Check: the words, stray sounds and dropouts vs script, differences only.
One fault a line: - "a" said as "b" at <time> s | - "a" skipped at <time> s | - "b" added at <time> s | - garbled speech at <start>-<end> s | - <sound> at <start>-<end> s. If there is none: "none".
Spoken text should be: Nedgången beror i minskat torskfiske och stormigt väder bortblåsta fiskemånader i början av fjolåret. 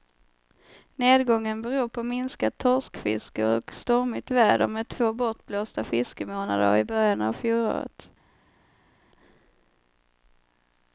- "i" said as "på" at 1.9 s
- "med två" added at 4.7 s